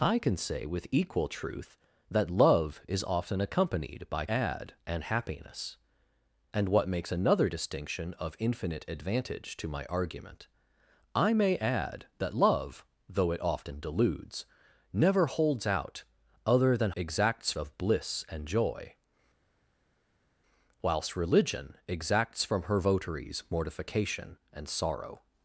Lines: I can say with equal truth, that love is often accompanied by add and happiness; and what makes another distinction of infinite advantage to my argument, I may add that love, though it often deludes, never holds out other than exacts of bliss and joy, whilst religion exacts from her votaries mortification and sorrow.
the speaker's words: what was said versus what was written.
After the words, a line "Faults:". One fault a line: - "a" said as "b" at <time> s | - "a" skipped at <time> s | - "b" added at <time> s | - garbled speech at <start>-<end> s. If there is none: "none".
I can say with equal truth, that love is often accompanied by add and happiness; and what makes another distinction of infinite advantage to my argument, I may add that love, though it often deludes, never holds out other than exacts of bliss and joy, whilst religion exacts from her votaries mortification and sorrow.
Faults:
none